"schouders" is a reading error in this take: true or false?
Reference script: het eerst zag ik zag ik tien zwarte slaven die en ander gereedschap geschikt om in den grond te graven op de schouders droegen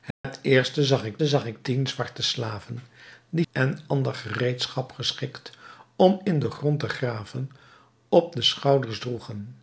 false